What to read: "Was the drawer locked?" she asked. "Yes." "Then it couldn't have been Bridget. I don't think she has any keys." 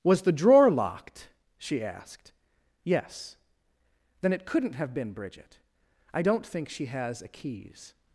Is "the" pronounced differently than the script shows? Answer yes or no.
no